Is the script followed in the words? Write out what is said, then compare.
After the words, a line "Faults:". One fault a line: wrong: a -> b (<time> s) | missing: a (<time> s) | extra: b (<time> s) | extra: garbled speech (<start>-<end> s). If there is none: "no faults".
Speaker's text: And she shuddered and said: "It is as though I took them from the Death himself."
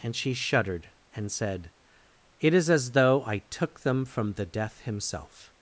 And she shuddered and said: "It is as though I took them from the Death himself."
Faults:
no faults